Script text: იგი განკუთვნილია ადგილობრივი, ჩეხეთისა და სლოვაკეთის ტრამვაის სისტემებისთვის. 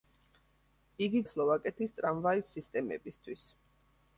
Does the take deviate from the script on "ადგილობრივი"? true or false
true